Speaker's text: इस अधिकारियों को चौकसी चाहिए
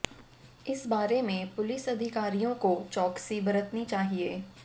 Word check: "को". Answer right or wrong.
right